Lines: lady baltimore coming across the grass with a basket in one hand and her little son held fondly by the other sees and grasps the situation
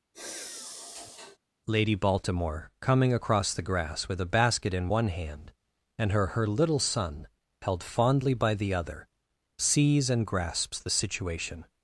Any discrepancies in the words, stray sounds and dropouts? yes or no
yes